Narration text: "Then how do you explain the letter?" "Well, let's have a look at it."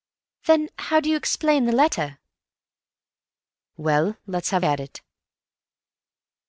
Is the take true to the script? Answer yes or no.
no